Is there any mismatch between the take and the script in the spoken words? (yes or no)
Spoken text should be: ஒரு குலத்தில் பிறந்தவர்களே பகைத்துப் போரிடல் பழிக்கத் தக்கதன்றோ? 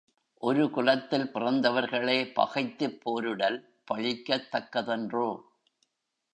no